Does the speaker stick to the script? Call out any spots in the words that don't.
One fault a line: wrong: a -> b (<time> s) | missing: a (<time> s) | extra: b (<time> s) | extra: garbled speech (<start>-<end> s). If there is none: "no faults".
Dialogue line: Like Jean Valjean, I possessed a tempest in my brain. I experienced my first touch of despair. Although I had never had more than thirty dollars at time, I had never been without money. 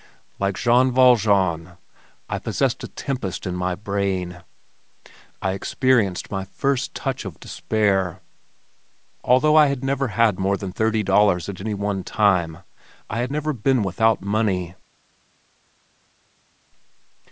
extra: any one (11.6 s)